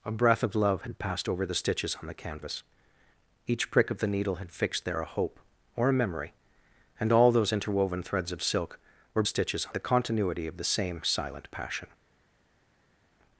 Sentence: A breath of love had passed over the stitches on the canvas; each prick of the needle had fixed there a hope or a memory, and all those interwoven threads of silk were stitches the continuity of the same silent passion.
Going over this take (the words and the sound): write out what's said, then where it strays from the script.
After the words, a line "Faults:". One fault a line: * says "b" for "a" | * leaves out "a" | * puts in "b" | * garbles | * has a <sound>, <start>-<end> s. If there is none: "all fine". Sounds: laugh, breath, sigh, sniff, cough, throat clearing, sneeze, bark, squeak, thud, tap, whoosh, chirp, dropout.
A breath of love had passed over the stitches on the canvas; each prick of the needle had fixed there a hope or a memory, and all those interwoven threads of silk were stitches the continuity of the same silent passion.
Faults:
all fine